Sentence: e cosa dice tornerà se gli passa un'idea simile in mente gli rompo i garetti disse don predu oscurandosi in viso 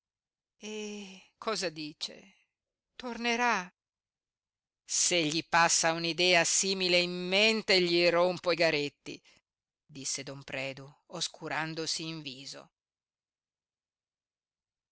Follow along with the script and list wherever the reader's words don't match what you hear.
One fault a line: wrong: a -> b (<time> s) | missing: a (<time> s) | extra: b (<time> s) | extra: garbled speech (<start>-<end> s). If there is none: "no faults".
no faults